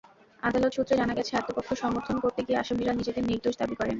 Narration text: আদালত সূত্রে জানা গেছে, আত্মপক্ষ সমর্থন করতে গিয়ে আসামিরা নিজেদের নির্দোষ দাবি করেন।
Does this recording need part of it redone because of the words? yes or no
no